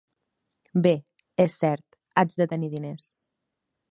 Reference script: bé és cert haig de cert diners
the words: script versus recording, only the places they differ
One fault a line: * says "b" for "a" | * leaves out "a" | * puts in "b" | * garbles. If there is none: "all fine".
* says "tenir" for "cert"